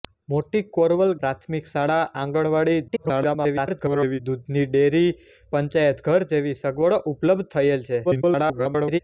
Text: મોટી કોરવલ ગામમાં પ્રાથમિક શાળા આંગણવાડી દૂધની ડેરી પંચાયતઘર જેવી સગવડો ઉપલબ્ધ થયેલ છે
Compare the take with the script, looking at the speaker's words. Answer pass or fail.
fail